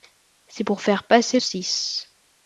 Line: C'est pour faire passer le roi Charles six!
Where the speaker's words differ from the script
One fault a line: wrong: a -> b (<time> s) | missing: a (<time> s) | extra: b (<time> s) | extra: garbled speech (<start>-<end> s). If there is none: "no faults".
missing: le roi Charles (1.4 s)